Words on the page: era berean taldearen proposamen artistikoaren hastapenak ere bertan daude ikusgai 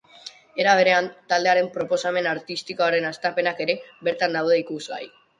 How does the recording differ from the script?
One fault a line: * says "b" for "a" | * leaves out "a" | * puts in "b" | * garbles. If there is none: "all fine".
all fine